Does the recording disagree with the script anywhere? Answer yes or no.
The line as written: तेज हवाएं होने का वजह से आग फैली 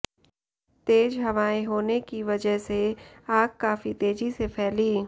yes